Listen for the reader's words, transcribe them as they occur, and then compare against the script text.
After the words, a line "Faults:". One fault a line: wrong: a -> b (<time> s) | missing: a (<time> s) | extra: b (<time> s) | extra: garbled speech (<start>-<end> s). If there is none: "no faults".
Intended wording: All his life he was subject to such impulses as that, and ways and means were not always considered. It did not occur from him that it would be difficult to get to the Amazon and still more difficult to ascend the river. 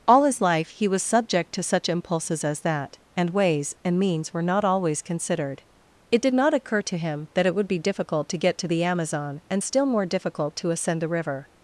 All his life he was subject to such impulses as that, and ways and means were not always considered. It did not occur to him that it would be difficult to get to the Amazon and still more difficult to ascend the river.
Faults:
wrong: from -> to (6.8 s)